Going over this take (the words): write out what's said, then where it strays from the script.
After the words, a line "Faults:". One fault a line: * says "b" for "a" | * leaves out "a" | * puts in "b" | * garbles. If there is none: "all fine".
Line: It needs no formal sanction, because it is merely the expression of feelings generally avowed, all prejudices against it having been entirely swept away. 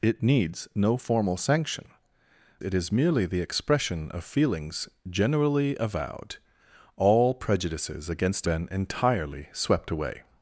It needs no formal sanction, it is merely the expression of feelings generally avowed, all prejudices against been entirely swept away.
Faults:
* leaves out "because"
* leaves out "it having"